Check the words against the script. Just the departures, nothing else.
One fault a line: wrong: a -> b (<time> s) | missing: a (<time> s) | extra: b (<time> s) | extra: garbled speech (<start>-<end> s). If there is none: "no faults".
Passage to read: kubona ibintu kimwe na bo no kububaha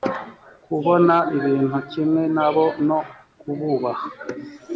no faults